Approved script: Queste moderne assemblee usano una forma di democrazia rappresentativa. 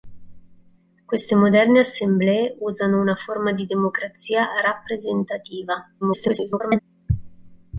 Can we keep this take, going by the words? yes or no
no